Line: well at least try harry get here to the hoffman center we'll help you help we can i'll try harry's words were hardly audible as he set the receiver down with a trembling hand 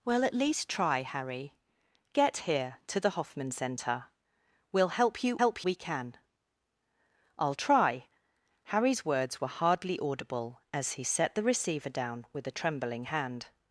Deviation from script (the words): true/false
false